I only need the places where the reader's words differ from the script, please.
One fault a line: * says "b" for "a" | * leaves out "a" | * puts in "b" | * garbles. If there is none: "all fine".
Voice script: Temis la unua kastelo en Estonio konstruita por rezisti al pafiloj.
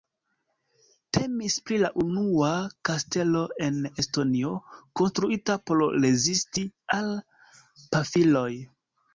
* puts in "pri"